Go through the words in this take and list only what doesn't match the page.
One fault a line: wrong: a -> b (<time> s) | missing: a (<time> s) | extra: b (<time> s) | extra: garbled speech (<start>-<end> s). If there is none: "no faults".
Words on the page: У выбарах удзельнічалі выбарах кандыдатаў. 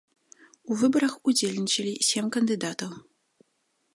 wrong: выбарах -> сем (2.1 s)